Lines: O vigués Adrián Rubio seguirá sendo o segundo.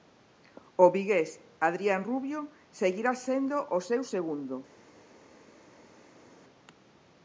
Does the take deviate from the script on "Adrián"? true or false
false